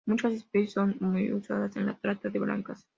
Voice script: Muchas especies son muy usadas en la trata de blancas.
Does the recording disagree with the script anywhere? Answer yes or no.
no